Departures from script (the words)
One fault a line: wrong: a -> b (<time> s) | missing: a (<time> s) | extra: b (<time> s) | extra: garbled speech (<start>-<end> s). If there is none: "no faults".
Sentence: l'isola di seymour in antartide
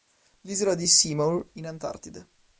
no faults